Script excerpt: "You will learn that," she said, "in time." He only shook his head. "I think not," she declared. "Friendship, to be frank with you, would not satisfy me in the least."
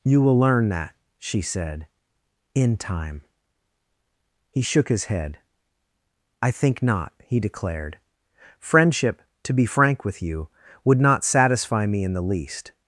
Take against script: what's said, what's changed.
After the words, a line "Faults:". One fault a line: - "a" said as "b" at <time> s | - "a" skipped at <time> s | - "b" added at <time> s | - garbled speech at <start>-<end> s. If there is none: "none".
"You will learn that," she said, "in time." He shook his head. "I think not," he declared. "Friendship, to be frank with you, would not satisfy me in the least."
Faults:
- "only" skipped at 4.6 s
- "she" said as "he" at 7.2 s